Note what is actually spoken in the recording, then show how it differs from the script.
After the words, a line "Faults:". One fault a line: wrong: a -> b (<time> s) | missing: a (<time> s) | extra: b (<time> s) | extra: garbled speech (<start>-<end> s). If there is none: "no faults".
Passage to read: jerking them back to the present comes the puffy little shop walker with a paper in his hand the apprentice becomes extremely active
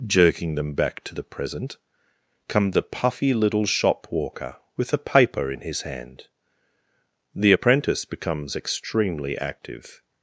jerking them back to the present come the puffy little shop walker with a paper in his hand the apprentice becomes extremely active
Faults:
wrong: comes -> come (2.5 s)